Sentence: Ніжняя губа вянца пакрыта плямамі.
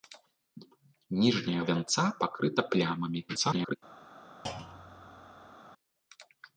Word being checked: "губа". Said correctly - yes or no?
no